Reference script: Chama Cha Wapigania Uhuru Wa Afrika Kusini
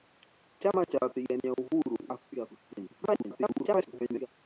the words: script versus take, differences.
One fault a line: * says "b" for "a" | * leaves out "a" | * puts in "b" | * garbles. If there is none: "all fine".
* leaves out "Wa"
* garbles